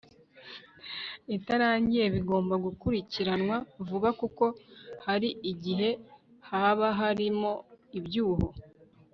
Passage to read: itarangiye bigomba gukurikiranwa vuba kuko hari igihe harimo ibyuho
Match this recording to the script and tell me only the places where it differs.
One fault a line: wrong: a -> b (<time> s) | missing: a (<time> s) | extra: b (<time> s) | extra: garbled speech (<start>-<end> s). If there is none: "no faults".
extra: haba (6.5 s)